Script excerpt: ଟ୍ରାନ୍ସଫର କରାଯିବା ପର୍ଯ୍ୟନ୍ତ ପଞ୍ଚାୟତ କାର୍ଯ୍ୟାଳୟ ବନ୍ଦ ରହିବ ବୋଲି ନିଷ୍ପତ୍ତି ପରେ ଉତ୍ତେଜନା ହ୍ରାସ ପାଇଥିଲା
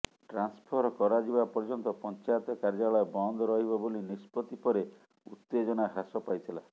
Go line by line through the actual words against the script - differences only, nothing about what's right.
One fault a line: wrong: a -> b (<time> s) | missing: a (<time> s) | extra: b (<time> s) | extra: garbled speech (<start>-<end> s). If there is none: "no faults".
no faults